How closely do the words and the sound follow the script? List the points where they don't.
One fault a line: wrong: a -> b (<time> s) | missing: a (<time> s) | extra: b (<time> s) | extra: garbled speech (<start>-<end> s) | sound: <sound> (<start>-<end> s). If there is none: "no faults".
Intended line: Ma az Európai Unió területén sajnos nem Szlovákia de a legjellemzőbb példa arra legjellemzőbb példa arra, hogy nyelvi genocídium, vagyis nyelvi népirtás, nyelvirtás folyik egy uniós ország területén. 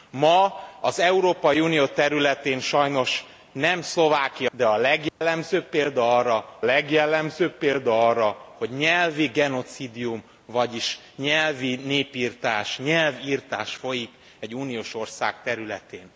sound: dropout (5.1-5.2 s)